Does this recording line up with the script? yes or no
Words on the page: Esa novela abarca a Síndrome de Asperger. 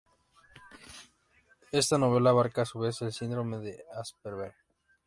no